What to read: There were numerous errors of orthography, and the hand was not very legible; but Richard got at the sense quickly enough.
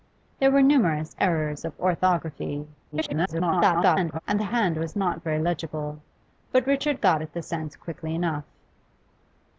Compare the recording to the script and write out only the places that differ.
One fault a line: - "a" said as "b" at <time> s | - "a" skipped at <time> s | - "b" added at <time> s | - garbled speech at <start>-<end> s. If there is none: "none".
- garbled speech at 2.9-4.2 s